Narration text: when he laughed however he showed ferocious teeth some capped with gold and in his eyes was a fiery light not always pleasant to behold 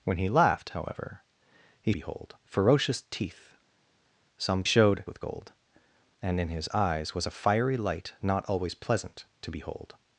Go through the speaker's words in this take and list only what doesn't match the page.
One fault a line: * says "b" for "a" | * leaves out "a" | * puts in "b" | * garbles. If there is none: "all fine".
* says "behold" for "showed"
* says "showed" for "capped"